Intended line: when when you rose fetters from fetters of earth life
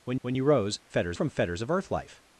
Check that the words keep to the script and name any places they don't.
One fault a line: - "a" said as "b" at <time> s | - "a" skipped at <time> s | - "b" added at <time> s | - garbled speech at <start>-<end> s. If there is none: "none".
none